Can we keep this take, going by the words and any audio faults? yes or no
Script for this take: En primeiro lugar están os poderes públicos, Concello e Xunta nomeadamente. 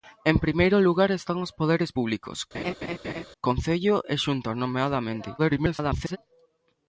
no